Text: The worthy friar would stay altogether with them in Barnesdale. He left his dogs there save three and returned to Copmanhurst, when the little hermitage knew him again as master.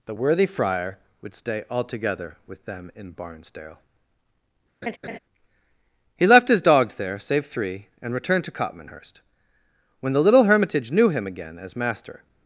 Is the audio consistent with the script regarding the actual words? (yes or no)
yes